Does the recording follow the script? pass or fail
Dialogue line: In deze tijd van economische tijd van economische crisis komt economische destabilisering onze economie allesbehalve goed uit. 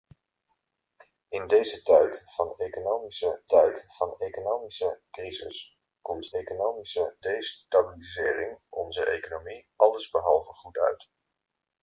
pass